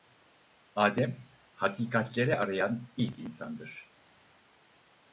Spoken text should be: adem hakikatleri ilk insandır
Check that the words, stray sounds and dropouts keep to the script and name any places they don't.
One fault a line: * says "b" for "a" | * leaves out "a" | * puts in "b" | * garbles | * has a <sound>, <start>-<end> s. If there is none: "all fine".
* puts in "arayan"